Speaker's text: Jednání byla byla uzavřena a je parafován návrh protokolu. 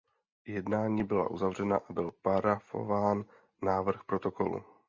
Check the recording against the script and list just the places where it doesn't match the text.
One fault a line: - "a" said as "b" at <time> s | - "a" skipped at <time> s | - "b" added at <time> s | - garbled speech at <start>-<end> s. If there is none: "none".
- "byla" skipped at 1.3 s
- "je" said as "byl" at 1.9 s